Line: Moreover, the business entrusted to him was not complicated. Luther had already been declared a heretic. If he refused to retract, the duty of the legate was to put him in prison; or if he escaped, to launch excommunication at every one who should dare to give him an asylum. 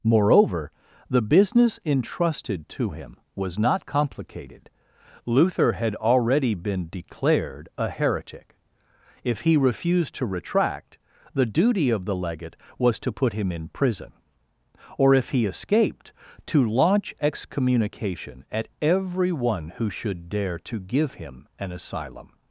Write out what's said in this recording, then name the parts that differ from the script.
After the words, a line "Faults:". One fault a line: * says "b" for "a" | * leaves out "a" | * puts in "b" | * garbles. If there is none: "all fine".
Moreover, the business entrusted to him was not complicated. Luther had already been declared a heretic. If he refused to retract, the duty of the legate was to put him in prison; or if he escaped, to launch excommunication at every one who should dare to give him an asylum.
Faults:
all fine